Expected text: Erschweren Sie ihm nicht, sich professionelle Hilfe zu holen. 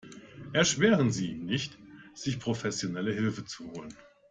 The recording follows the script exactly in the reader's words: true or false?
true